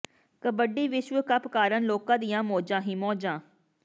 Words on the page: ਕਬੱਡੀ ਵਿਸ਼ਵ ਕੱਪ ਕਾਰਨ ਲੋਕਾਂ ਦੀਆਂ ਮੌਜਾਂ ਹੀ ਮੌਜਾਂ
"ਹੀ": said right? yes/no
yes